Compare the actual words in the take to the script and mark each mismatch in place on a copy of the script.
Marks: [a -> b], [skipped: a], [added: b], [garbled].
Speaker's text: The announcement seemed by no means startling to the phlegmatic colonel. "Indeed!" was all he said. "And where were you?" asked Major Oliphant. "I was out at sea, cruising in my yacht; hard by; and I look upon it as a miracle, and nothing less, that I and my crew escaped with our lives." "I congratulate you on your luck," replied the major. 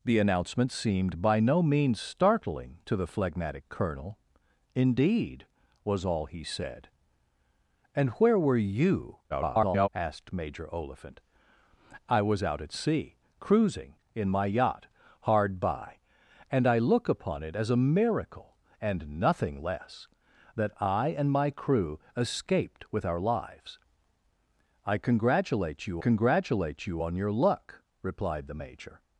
The announcement seemed by no means startling to the phlegmatic colonel. "Indeed!" was all he said. "And where were you?" [garbled] asked Major Oliphant. "I was out at sea, cruising in my yacht; hard by; and I look upon it as a miracle, and nothing less, that I and my crew escaped with our lives." "I congratulate you [added: congratulate you] on your luck," replied the major.